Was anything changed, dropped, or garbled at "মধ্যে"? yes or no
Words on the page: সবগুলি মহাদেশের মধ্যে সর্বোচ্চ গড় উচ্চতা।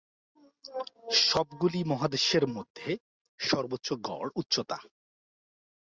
no